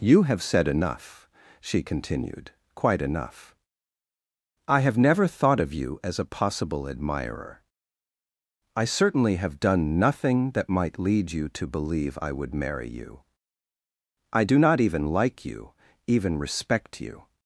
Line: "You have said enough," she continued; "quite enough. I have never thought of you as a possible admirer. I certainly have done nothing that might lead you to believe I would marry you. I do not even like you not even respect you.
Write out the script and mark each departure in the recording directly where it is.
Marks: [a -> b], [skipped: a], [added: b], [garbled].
"You have said enough," she continued; "quite enough. I have never thought of you as a possible admirer. I certainly have done nothing that might lead you to believe I would marry you. I do not even like you [skipped: not] even respect you.